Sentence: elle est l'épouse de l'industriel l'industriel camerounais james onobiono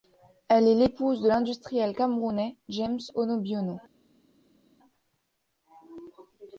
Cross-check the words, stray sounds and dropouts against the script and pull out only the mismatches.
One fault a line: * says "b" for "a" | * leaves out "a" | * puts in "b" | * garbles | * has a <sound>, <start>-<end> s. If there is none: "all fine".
* leaves out "l'industriel"